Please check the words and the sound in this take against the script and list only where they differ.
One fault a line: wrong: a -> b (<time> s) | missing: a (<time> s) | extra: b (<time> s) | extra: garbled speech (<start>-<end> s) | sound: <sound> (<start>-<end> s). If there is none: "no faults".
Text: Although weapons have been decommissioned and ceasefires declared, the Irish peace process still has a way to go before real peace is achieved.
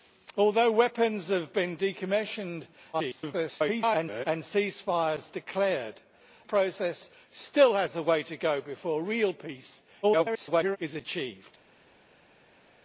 extra: garbled speech (2.9-4.3 s)
missing: the Irish peace (6.0 s)
extra: garbled speech (10.0-10.8 s)